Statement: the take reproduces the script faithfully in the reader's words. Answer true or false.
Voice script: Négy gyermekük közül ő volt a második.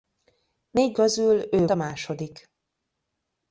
false